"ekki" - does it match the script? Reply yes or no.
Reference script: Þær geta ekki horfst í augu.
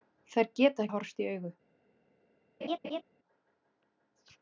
no